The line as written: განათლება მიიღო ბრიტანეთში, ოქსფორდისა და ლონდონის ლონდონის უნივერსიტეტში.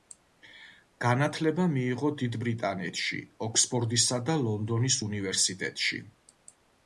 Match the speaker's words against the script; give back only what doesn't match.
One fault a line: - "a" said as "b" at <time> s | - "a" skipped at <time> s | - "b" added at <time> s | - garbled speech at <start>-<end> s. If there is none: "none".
- "დიდ" added at 2.2 s
- "ლონდონის" skipped at 5.0 s